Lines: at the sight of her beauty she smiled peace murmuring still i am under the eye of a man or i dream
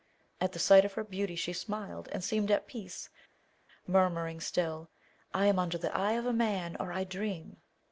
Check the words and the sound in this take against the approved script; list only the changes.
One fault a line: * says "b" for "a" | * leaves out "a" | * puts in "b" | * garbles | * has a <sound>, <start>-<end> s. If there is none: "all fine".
* puts in "and seemed at"